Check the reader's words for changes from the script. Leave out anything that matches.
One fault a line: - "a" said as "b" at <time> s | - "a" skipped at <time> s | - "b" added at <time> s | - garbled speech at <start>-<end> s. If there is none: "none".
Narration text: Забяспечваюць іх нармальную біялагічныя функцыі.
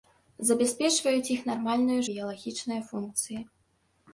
none